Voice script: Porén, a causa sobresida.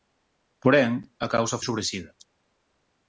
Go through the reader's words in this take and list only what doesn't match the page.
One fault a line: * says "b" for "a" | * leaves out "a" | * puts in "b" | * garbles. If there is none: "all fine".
all fine